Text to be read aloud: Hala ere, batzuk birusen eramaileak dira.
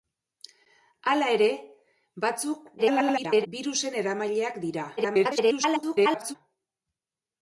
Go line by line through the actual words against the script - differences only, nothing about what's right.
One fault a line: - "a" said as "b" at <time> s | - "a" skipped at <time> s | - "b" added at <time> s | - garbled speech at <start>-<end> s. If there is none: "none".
- garbled speech at 2.8-3.5 s
- garbled speech at 5.0-6.3 s